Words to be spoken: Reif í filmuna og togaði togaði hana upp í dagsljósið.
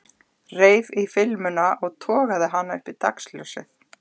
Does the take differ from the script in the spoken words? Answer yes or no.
yes